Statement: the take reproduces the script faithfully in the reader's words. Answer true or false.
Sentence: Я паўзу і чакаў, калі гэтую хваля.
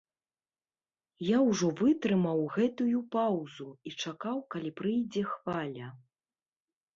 false